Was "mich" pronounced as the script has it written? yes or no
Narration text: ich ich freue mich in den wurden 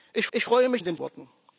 yes